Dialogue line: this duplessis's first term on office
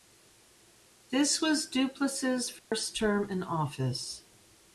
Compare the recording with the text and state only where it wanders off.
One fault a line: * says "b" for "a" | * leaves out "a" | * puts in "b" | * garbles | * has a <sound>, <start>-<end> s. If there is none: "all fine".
* puts in "was"
* has a dropout, 2.6-2.7 s
* says "in" for "on"